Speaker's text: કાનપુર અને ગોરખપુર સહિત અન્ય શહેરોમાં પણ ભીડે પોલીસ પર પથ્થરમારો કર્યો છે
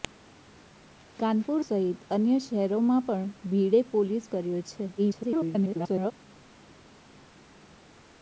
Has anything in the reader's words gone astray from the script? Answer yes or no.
yes